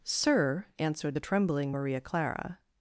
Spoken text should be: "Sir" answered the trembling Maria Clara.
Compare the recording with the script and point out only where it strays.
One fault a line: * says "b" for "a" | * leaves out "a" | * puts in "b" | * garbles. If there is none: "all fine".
all fine